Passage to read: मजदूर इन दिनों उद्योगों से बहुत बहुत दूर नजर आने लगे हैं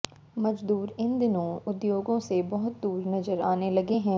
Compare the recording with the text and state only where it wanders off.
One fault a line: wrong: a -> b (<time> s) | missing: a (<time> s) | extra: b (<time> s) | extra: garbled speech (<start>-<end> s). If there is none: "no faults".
missing: बहुत (2.8 s)